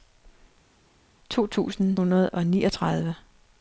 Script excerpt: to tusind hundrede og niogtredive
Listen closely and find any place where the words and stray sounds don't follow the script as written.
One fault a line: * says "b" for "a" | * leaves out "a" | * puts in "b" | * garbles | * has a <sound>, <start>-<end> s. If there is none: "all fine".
all fine